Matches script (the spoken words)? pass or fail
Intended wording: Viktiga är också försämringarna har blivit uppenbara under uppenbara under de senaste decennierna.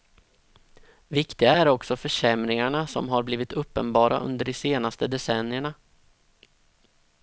fail